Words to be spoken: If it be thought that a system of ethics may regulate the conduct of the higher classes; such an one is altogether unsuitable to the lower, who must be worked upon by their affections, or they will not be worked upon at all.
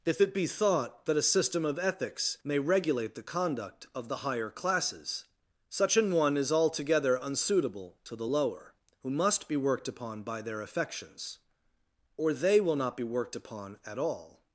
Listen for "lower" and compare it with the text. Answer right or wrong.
right